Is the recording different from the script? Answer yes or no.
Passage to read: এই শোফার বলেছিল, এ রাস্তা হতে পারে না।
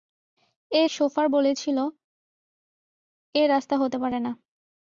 no